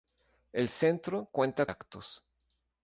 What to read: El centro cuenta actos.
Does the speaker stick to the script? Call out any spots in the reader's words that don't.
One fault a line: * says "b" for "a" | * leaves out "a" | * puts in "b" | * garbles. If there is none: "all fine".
all fine